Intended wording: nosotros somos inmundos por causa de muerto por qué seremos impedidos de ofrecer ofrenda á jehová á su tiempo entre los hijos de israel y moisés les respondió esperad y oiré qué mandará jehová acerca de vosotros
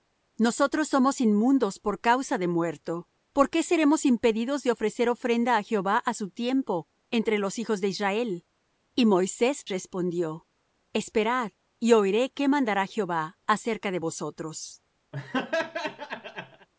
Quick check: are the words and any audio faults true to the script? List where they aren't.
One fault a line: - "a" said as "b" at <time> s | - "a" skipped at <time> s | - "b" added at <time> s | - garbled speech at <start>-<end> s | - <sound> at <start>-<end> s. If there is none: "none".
- "les" skipped at 9.7 s
- laugh at 15.1-16.7 s